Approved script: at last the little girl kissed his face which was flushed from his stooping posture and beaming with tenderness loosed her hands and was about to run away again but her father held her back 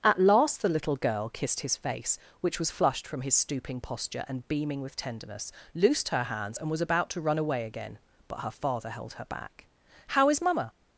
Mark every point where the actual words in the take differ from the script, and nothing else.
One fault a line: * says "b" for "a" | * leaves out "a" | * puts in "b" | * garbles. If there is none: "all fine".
* puts in "how is mamma"